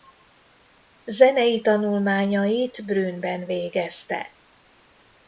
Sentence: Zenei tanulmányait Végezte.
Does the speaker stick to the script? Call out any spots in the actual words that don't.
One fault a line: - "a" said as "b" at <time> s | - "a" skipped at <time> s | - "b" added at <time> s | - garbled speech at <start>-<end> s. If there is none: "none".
- "Brünnben" added at 2.9 s